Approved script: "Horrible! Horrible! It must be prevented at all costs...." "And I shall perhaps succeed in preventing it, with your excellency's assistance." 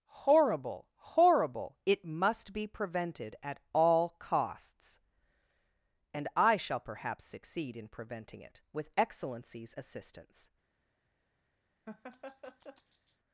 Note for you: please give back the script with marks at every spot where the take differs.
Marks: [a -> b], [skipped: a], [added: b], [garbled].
"Horrible! Horrible! It must be prevented at all costs...." "And I shall perhaps succeed in preventing it, with [skipped: your] excellency's assistance."